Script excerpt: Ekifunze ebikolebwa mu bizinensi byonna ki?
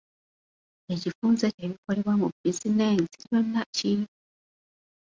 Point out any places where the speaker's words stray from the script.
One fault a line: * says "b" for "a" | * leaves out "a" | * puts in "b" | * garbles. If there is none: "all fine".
all fine